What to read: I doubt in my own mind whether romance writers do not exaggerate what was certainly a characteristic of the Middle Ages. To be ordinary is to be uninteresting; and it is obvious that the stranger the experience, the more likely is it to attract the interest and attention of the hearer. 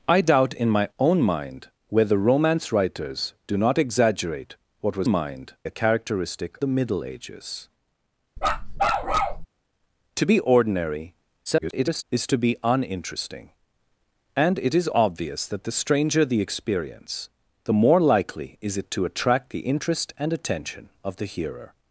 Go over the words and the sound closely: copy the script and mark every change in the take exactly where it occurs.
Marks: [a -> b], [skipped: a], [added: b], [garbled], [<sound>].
I doubt in my own mind whether romance writers do not exaggerate what was [certainly -> mind] a characteristic [skipped: of] the Middle Ages. [bark] To be ordinary [garbled] is to be uninteresting; and it is obvious that the stranger the experience, the more likely is it to attract the interest and attention of the hearer.